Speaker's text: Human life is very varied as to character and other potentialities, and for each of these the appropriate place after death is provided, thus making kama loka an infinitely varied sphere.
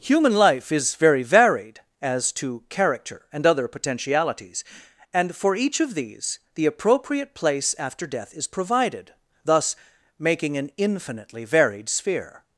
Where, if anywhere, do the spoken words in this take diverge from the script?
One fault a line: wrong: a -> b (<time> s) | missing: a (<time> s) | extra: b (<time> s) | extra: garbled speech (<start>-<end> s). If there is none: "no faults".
missing: kama loka (10.6 s)